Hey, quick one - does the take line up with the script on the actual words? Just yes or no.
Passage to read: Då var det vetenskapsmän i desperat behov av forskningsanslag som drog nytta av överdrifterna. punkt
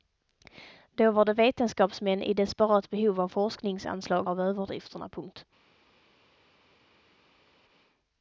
no